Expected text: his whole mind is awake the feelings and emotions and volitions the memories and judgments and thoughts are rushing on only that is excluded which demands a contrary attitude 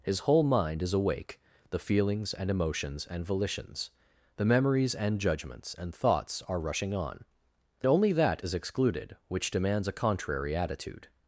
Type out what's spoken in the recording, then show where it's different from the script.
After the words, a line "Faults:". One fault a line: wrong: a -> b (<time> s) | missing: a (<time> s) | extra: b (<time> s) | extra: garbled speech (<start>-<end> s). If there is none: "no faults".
his whole mind is awake the feelings and emotions and volitions the memories and judgments and thoughts are rushing on only that is excluded which demands a contrary attitude
Faults:
no faults